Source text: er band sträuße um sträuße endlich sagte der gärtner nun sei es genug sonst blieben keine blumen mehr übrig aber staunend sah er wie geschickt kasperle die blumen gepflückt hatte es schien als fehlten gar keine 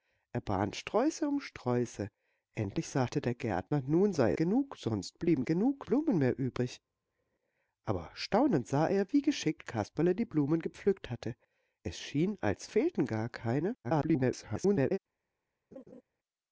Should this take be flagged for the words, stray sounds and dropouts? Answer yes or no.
yes